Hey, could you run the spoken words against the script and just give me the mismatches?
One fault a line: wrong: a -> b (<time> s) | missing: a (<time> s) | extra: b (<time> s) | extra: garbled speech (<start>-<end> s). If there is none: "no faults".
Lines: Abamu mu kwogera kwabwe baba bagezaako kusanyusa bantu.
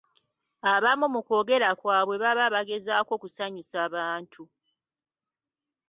no faults